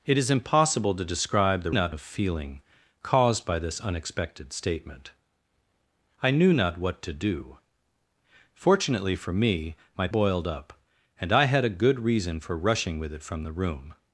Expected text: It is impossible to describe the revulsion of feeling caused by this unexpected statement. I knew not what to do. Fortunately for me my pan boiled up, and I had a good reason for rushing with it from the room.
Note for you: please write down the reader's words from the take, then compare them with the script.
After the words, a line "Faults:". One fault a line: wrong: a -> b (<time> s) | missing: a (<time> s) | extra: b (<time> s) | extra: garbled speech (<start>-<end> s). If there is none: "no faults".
It is impossible to describe the not of feeling caused by this unexpected statement. I knew not what to do. Fortunately for me my boiled up, and I had a good reason for rushing with it from the room.
Faults:
wrong: revulsion -> not (1.7 s)
missing: pan (10.1 s)